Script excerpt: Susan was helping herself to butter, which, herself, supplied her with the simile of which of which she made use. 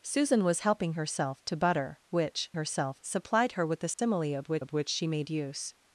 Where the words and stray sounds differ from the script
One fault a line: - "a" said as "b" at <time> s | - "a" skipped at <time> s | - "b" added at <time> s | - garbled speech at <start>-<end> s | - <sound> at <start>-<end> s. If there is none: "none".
- dropout at 3.9-4.0 s